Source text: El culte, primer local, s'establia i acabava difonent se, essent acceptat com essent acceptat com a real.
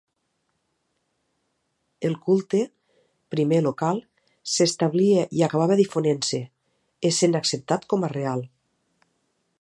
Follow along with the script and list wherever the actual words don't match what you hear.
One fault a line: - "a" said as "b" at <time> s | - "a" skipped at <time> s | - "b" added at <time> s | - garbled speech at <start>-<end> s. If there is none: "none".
- "essent acceptat com" skipped at 8.1 s